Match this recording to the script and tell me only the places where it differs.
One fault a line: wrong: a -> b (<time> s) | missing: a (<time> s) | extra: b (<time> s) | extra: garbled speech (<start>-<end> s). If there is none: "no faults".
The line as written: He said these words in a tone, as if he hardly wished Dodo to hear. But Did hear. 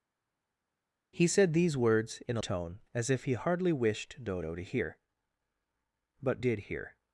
no faults